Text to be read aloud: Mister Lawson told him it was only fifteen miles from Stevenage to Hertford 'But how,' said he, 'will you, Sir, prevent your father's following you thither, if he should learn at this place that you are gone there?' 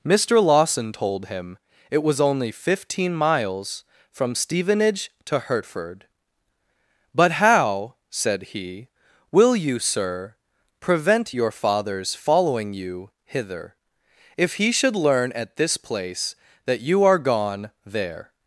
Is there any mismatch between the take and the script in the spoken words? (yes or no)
yes